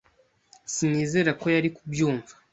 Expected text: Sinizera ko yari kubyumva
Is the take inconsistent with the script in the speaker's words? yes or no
no